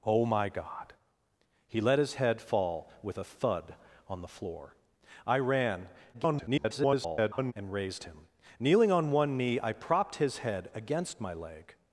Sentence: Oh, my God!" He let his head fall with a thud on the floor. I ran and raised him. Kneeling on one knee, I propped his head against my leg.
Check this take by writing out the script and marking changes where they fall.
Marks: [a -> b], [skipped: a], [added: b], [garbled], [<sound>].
Oh, my God!" He let his head fall with a thud on the floor. I ran [garbled] and raised him. Kneeling on one knee, I propped his head against my leg.